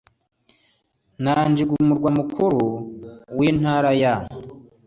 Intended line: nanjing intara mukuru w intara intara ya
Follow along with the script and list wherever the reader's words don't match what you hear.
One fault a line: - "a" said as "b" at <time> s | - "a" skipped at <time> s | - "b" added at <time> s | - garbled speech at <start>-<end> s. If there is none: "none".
- "intara" said as "umurwa" at 1.8 s
- "intara" skipped at 3.9 s